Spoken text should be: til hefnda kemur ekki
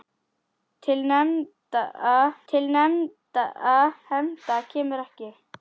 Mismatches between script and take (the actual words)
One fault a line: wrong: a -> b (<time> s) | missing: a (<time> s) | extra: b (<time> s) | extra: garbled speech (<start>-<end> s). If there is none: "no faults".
extra: til (2.5 s)